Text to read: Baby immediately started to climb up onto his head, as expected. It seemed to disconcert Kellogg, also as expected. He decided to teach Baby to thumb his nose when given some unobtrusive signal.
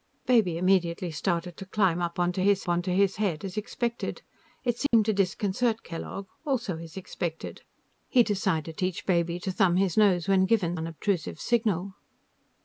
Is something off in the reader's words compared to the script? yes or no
yes